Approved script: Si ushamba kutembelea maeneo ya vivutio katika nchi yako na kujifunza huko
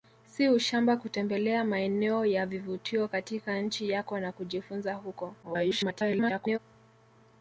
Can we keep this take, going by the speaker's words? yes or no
no